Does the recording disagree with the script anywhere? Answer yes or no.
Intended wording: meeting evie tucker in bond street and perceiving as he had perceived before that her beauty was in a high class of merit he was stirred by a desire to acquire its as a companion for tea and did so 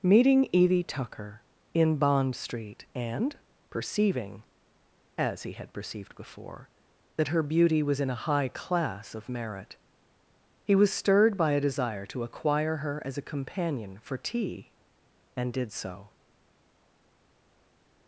yes